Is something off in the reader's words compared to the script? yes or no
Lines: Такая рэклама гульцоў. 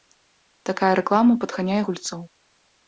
yes